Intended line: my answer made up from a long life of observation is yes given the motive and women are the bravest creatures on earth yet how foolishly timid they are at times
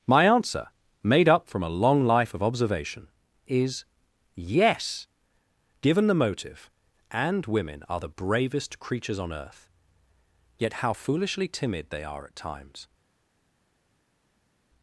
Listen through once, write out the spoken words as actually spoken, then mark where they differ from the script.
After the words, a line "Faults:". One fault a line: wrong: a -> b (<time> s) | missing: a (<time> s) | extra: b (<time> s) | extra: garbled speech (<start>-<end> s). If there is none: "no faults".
my answer made up from a long life of observation is yes given the motive and women are the bravest creatures on earth yet how foolishly timid they are at times
Faults:
no faults